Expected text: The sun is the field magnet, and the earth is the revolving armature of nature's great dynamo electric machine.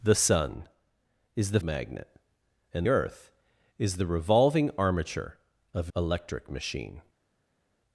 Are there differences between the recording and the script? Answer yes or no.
yes